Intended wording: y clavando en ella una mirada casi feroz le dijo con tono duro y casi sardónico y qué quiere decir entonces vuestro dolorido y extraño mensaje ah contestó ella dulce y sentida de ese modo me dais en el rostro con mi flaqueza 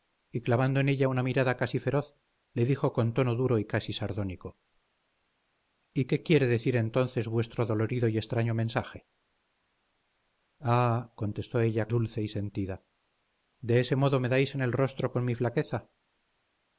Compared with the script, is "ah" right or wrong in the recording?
right